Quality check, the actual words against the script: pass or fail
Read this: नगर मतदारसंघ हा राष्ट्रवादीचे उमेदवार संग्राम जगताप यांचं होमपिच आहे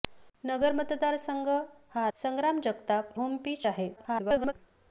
fail